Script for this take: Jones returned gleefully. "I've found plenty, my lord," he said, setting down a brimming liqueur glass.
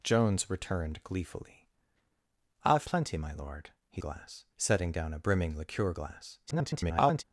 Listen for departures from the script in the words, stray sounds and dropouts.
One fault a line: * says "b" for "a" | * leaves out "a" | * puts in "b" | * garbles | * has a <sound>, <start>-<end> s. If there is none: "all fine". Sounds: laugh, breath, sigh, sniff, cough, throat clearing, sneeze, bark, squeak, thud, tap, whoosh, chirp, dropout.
* leaves out "found"
* says "glass" for "said"
* garbles